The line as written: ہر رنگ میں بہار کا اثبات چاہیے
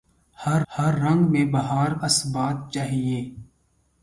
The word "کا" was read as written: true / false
false